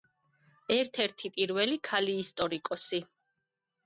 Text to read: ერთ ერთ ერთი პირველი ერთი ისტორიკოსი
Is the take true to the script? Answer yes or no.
no